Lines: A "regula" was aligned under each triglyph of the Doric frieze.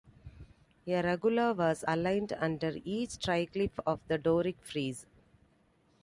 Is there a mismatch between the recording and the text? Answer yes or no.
no